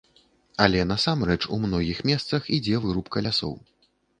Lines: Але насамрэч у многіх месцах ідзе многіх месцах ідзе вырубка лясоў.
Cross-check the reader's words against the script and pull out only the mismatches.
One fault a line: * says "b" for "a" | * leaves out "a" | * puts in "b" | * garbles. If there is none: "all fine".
* leaves out "многіх месцах ідзе"